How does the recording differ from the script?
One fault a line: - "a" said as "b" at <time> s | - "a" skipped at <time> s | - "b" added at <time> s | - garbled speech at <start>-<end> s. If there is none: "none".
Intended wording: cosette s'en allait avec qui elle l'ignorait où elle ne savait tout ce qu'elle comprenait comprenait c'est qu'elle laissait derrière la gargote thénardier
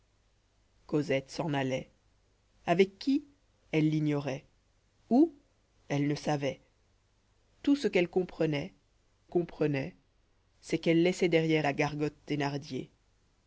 none